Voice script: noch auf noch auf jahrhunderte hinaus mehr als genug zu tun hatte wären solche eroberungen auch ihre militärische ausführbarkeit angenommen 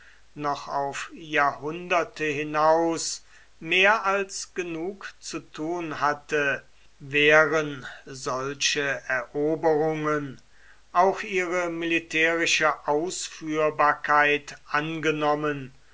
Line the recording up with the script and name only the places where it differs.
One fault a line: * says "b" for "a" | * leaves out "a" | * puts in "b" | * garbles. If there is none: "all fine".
* leaves out "noch auf"